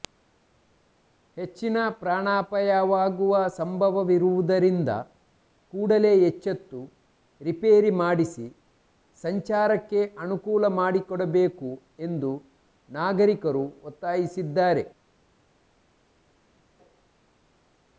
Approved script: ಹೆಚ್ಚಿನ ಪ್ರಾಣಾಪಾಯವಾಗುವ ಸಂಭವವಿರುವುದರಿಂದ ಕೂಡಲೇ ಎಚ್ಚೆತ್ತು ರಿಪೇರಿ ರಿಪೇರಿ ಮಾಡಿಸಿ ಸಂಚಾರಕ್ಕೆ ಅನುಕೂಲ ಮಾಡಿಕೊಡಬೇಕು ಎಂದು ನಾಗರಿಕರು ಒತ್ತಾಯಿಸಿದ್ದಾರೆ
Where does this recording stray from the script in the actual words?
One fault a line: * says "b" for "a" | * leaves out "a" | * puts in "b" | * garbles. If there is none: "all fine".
* leaves out "ರಿಪೇರಿ"